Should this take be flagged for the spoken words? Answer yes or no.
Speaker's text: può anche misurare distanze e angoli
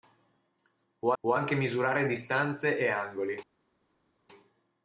yes